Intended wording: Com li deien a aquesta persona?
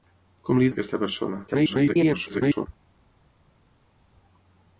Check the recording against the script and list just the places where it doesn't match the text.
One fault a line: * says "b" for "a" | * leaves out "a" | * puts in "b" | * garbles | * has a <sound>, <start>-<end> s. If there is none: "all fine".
* leaves out "deien"
* garbles